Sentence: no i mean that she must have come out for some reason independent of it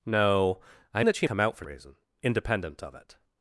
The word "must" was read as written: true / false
false